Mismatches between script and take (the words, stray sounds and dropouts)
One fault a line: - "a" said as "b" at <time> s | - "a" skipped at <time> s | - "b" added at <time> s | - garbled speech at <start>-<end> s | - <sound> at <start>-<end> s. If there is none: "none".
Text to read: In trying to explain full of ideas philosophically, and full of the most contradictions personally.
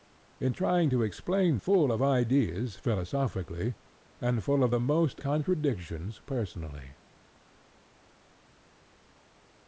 none